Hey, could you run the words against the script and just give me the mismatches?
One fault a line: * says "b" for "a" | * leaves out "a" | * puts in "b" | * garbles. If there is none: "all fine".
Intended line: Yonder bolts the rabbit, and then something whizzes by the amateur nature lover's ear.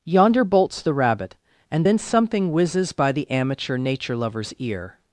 all fine